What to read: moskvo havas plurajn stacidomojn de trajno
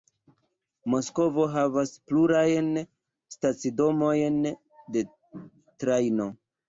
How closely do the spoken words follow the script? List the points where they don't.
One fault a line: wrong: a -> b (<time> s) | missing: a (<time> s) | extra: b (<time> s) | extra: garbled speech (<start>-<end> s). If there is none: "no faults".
no faults